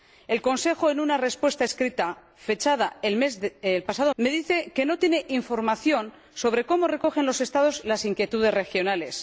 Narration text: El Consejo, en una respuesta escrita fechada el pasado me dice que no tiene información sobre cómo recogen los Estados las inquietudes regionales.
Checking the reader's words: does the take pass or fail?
pass